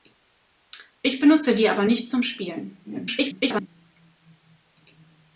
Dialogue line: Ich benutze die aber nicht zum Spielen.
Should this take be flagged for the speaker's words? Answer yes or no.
yes